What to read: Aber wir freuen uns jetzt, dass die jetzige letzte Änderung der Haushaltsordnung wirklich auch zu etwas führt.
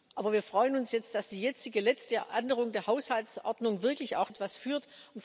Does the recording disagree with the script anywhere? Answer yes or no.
yes